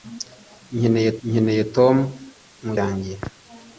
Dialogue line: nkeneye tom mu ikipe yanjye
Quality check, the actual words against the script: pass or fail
fail